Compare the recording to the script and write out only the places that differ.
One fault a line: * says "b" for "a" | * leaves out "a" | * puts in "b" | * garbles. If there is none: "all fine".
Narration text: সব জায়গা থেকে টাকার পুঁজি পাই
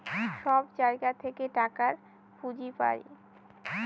all fine